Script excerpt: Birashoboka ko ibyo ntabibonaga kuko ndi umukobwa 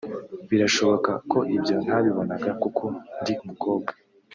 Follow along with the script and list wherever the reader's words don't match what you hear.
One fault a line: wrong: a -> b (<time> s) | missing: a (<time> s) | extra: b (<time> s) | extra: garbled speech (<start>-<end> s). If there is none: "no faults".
no faults